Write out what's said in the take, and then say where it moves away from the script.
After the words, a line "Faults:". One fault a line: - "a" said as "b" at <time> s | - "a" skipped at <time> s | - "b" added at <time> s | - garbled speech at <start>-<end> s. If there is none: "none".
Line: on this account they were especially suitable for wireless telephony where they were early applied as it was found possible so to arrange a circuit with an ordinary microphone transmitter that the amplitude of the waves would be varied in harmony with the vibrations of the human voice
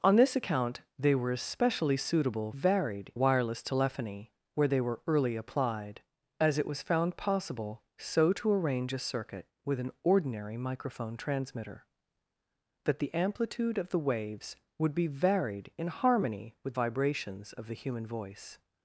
on this account they were especially suitable varied wireless telephony where they were early applied as it was found possible so to arrange a circuit with an ordinary microphone transmitter that the amplitude of the waves would be varied in harmony with vibrations of the human voice
Faults:
- "for" said as "varied" at 2.5 s
- "the" skipped at 16.8 s